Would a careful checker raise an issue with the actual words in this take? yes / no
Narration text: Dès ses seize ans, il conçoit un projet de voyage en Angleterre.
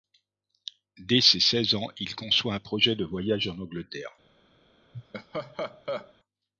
no